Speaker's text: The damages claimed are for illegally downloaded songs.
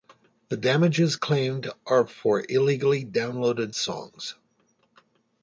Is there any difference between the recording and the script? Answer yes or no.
no